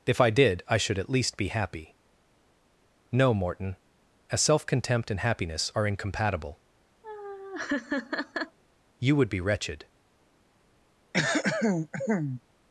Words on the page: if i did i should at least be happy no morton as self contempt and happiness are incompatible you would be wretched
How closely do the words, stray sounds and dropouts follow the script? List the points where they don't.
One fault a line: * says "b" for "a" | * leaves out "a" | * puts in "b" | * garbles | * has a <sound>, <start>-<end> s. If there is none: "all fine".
* has a laugh, 7.0-8.6 s
* has a throat clearing, 11.1-12.4 s